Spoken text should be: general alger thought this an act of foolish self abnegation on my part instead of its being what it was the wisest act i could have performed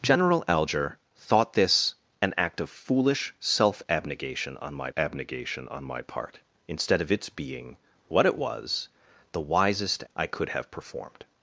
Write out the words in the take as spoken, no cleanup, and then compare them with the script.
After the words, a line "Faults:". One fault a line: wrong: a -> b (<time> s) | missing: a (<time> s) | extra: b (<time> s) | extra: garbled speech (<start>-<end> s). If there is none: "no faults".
general alger thought this an act of foolish self abnegation on my abnegation on my part instead of its being what it was the wisest i could have performed
Faults:
extra: abnegation on my (4.9 s)
missing: act (10.0 s)